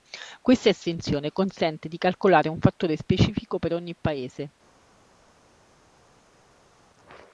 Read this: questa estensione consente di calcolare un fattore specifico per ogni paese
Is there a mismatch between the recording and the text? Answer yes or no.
no